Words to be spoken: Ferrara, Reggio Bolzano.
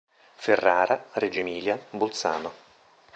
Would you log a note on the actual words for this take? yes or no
yes